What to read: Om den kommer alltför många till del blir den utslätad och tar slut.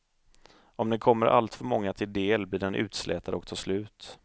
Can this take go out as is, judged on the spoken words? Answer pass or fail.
pass